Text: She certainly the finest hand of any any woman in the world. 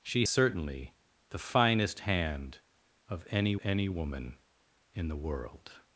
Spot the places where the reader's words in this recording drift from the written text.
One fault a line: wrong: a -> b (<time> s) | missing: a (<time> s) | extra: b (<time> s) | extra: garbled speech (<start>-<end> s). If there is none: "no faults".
no faults